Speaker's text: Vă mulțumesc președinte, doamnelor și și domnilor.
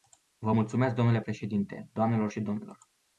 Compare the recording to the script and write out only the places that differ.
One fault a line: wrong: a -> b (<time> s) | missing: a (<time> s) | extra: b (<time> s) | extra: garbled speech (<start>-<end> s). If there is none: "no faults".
extra: dle (0.9 s)
missing: și (2.4 s)